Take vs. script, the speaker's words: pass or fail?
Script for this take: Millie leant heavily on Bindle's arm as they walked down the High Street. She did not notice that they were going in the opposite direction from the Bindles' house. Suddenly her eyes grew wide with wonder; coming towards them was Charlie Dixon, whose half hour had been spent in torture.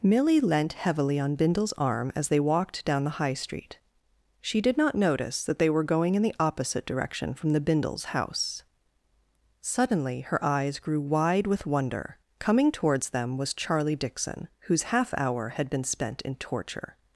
pass